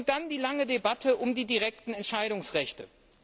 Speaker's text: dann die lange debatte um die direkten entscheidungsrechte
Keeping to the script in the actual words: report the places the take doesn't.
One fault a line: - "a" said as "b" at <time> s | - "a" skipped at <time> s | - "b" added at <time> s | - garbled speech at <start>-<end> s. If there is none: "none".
none